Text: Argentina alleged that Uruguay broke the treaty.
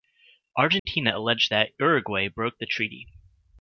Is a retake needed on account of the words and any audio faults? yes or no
yes